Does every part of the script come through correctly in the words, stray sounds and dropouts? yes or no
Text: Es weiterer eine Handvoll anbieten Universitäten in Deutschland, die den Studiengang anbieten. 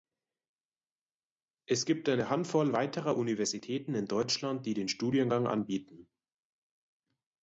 no